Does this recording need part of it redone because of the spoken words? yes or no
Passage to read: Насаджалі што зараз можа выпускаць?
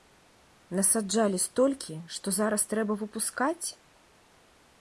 yes